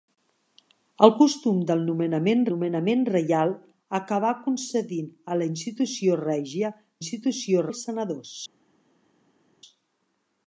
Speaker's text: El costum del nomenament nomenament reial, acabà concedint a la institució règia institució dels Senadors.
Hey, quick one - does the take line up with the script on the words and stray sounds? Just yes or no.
yes